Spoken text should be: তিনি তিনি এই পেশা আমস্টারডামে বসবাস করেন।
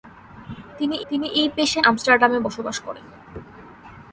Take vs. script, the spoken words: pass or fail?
pass